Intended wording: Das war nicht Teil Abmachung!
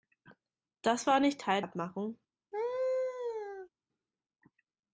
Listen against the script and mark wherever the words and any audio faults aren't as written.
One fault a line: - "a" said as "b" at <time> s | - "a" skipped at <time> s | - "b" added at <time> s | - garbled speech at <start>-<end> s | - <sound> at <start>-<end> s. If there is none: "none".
- laugh at 2.5-3.7 s